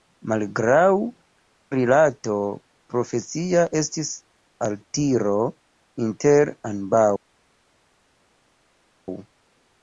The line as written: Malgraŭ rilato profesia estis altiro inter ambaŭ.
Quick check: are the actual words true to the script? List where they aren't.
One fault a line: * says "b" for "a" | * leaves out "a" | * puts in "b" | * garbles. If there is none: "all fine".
all fine